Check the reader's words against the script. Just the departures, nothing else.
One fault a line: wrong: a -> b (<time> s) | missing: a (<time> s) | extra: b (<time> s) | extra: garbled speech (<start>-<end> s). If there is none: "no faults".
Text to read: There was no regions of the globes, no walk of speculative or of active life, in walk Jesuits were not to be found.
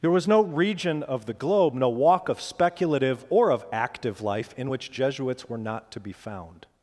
wrong: regions -> region (0.4 s)
wrong: globes -> globe (1.3 s)
wrong: walk -> which (4.7 s)